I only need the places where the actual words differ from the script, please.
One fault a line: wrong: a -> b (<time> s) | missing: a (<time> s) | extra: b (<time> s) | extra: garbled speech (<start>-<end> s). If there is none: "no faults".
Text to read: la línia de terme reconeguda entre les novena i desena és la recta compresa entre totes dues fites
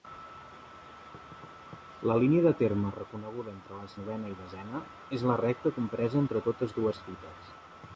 no faults